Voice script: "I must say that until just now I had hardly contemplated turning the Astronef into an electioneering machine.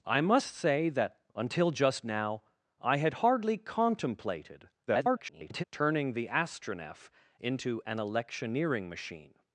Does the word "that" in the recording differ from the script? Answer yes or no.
no